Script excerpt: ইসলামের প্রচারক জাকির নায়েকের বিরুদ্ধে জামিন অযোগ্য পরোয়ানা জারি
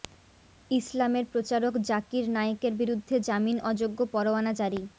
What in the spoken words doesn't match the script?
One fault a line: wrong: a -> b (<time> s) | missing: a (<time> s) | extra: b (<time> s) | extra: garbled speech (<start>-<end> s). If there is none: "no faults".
no faults